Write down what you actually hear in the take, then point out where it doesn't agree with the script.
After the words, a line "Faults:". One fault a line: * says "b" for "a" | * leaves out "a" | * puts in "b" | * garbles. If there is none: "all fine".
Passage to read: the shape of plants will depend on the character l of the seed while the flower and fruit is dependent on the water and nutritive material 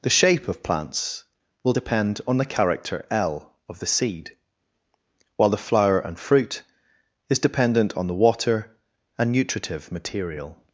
the shape of plants will depend on the character l of the seed while the flower and fruit is dependent on the water and nutritive material
Faults:
all fine